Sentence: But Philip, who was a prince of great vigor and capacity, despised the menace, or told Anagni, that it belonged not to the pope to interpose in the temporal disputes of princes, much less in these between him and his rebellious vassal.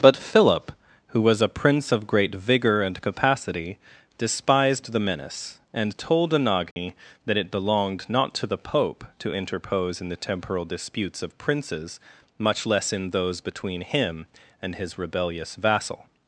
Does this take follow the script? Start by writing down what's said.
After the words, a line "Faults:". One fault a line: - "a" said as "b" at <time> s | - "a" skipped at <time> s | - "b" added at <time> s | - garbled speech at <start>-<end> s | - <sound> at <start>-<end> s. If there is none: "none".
But Philip, who was a prince of great vigor and capacity, despised the menace, and told Anagni, that it belonged not to the pope to interpose in the temporal disputes of princes, much less in those between him and his rebellious vassal.
Faults:
- "or" said as "and" at 5.8 s
- dropout at 6.7-6.8 s
- "these" said as "those" at 13.1 s